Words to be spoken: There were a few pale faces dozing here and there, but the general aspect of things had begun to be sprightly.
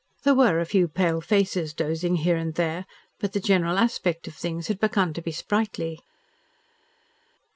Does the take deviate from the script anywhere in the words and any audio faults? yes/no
no